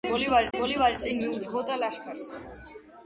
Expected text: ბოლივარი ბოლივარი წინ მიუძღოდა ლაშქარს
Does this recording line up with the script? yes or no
yes